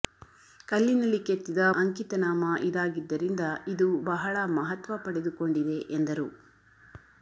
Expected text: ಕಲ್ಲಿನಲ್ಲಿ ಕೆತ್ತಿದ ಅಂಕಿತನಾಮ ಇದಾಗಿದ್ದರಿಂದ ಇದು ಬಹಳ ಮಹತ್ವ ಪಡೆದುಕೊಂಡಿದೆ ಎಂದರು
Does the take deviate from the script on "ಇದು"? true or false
false